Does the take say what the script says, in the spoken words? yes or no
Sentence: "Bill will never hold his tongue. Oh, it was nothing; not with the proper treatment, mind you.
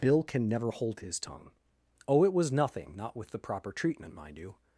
no